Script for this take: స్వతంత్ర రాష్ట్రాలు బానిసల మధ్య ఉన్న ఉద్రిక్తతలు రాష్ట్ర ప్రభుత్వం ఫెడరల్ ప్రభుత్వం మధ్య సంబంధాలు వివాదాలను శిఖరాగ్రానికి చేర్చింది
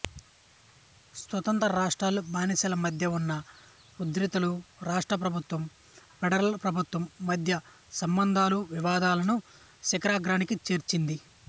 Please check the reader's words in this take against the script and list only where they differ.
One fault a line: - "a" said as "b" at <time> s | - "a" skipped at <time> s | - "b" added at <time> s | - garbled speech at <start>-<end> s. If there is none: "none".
none